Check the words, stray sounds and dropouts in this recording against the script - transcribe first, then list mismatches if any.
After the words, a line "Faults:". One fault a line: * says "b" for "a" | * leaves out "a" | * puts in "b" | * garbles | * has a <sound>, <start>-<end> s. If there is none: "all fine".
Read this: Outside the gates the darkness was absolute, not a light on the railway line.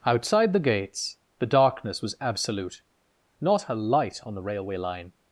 Outside the gates the darkness was absolute, not a light on the railway line.
Faults:
all fine